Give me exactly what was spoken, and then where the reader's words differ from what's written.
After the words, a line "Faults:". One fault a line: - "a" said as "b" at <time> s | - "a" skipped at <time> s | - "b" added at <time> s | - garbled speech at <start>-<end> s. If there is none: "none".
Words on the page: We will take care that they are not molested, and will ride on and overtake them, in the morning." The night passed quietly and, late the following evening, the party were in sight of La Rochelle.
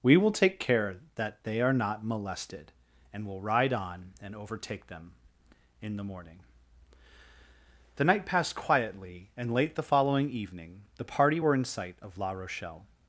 We will take care that they are not molested, and will ride on and overtake them, in the morning." The night passed quietly and, late the following evening, the party were in sight of La Rochelle.
Faults:
none